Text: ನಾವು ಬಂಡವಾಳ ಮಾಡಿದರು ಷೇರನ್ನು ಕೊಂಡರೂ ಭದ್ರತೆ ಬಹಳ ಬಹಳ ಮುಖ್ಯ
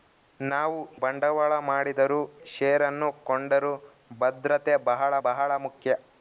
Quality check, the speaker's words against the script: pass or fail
pass